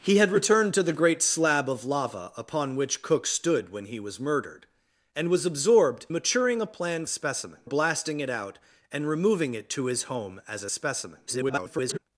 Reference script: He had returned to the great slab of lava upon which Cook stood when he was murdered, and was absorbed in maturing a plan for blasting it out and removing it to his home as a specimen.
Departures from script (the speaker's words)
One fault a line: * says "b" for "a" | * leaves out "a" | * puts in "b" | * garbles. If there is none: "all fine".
* leaves out "in"
* says "specimen" for "for"
* garbles